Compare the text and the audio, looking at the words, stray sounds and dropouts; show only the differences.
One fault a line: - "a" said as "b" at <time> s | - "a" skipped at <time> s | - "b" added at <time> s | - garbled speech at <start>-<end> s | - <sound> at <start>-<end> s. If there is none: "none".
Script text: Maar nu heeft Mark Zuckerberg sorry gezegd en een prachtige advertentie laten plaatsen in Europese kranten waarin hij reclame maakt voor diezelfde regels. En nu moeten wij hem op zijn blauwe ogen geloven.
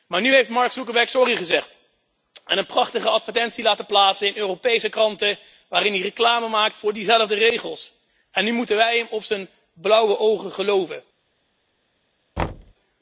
- thud at 12.4-12.7 s